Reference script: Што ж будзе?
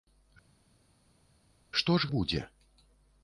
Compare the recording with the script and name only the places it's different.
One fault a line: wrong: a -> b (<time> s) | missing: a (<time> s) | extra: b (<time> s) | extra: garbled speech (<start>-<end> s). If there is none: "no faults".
no faults